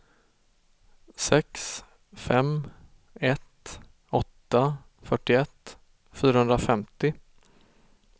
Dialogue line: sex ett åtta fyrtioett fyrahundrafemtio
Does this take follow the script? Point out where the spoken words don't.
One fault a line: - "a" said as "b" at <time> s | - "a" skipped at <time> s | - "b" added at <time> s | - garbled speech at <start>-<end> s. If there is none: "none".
- "fem" added at 2.1 s